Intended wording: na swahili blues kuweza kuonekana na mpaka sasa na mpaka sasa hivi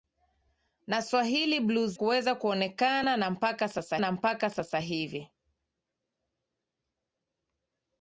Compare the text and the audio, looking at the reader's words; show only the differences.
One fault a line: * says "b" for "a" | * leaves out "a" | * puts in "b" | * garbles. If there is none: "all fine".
all fine